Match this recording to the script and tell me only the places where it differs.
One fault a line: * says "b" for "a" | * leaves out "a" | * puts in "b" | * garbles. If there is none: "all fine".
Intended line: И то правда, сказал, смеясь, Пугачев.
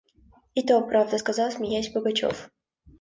all fine